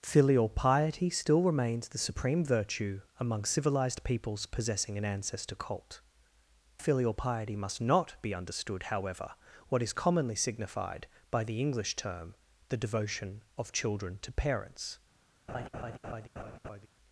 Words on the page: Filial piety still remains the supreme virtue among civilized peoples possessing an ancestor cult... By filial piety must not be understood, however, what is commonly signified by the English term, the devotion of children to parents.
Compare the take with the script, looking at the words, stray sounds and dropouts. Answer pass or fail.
fail